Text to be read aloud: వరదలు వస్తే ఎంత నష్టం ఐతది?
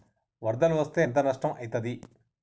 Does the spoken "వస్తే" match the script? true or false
true